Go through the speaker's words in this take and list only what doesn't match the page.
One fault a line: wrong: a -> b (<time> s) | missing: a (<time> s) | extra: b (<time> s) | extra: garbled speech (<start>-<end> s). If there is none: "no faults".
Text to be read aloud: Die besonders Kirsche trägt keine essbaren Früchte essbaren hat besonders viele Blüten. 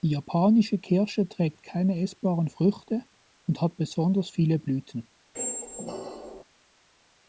wrong: besonders -> japanische (0.1 s)
wrong: essbaren -> und (3.5 s)